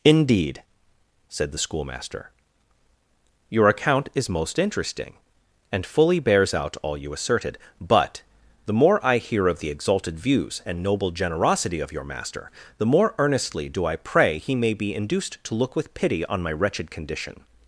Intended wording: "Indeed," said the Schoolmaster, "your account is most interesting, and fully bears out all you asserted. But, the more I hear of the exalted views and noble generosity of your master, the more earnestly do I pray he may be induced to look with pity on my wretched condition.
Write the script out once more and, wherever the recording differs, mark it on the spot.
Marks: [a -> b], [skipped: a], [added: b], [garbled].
"Indeed," said the Schoolmaster, "your account is most interesting, and fully bears out all you asserted. But, the more I hear of the exalted views and noble generosity of your master, the more earnestly do I pray he may be induced to look with pity on my wretched condition.